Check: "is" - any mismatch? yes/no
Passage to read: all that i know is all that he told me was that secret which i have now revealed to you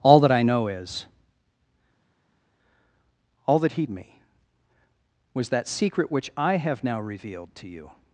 no